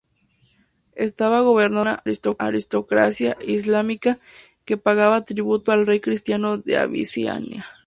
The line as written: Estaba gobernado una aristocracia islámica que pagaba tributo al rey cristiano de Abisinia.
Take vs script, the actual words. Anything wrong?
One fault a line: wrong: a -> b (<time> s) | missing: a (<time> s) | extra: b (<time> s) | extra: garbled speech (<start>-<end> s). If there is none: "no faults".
no faults